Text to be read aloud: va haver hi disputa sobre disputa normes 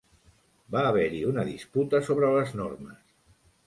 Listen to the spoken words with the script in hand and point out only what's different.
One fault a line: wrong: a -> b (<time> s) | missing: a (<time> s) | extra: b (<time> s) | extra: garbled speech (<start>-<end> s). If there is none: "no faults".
extra: una (1.3 s)
wrong: disputa -> les (2.4 s)